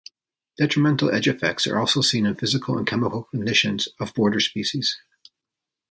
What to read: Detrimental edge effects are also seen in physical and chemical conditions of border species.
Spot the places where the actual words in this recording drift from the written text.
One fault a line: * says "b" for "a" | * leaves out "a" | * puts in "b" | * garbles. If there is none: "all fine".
all fine